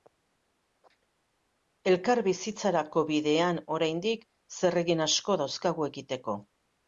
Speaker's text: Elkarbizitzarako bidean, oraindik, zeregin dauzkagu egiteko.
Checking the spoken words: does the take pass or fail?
fail